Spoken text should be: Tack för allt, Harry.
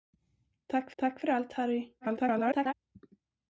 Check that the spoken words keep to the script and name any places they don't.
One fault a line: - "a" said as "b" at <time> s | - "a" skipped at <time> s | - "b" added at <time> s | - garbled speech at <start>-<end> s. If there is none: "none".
- "tack" added at 1.0 s
- garbled speech at 2.0-2.7 s